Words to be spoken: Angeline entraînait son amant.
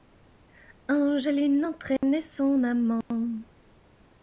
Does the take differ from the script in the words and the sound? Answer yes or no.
yes